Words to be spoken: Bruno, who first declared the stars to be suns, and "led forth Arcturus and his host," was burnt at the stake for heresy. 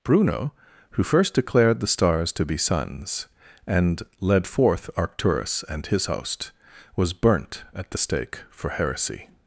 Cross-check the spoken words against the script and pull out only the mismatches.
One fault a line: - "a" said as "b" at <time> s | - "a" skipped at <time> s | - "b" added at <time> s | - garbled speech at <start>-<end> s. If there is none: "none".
none